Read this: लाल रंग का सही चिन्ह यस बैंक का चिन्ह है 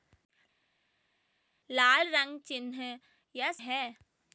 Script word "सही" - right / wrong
wrong